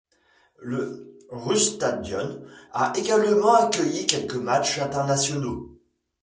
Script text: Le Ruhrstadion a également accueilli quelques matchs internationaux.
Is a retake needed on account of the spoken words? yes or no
no